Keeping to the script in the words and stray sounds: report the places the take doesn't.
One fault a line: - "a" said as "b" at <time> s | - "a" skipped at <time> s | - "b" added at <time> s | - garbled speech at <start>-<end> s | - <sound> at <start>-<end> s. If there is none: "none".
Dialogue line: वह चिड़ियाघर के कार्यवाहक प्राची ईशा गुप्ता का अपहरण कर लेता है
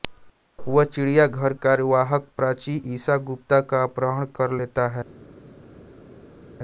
- "के" skipped at 1.5 s